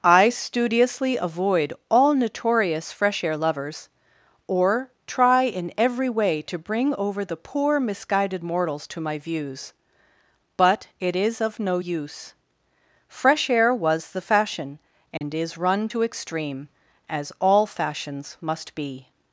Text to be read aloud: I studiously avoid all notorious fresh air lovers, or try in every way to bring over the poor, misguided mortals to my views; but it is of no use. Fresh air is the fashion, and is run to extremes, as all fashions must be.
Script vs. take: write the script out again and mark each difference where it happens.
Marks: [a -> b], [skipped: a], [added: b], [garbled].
I studiously avoid all notorious fresh air lovers, or try in every way to bring over the poor, misguided mortals to my views; but it is of no use. Fresh air [is -> was] the fashion, and is run to [extremes, -> extreme] as all fashions must be.